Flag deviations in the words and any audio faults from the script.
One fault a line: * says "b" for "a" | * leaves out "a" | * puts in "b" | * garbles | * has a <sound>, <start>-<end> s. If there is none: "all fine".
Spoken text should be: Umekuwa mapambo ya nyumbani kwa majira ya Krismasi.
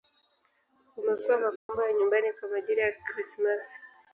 * has a dropout, 1.6-1.7 s